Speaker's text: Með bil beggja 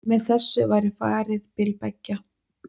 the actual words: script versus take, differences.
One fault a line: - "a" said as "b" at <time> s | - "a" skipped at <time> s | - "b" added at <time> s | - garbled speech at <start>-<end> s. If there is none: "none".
- "þessu væri farið" added at 0.3 s